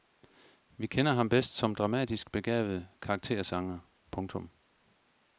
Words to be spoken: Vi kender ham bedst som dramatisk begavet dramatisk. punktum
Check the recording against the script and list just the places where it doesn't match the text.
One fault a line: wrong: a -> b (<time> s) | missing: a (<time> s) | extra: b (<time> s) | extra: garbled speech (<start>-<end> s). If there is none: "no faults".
wrong: dramatisk -> karaktersanger (3.0 s)